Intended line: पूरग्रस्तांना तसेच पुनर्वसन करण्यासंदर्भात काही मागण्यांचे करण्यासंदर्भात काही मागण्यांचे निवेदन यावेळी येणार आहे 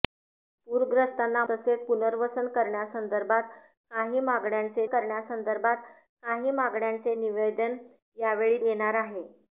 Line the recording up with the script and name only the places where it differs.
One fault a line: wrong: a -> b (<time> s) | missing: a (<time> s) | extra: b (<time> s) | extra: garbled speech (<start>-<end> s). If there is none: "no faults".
no faults